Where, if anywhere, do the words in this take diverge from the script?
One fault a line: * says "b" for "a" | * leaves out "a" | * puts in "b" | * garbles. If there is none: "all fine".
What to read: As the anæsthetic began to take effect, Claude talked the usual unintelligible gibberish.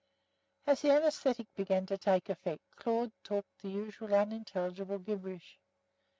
all fine